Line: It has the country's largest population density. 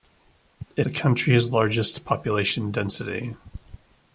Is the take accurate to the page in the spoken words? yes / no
no